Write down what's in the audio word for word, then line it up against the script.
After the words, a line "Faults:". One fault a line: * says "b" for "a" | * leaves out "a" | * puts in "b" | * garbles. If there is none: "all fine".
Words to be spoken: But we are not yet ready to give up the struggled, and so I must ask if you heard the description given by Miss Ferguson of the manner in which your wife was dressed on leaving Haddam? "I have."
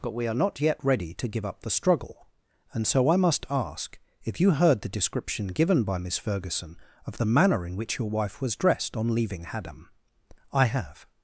But we are not yet ready to give up the struggle, and so I must ask if you heard the description given by Miss Ferguson of the manner in which your wife was dressed on leaving Haddam? "I have."
Faults:
* says "struggle" for "struggled"